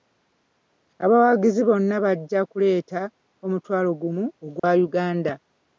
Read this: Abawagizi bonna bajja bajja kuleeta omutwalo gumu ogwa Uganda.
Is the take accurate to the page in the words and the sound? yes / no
no